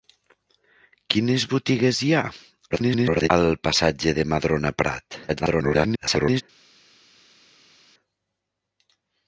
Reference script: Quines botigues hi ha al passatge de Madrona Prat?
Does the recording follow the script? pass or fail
fail